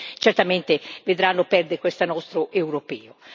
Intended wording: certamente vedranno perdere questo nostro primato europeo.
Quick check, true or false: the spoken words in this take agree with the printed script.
false